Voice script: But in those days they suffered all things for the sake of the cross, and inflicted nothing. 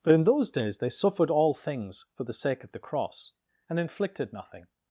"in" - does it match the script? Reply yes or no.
yes